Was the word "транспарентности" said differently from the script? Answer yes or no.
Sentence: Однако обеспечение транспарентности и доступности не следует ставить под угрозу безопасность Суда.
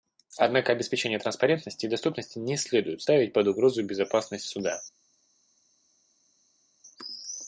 no